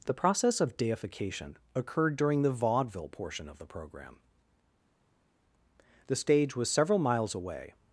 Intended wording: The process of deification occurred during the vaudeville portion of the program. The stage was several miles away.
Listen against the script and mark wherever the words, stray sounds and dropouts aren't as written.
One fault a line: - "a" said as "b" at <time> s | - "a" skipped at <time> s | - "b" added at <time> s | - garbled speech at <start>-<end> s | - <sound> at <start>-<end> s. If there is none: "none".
none